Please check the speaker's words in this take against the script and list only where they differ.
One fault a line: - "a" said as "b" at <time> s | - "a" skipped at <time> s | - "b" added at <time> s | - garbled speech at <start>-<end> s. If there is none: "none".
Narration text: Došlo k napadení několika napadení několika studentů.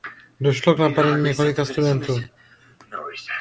- "napadení několika" skipped at 1.6 s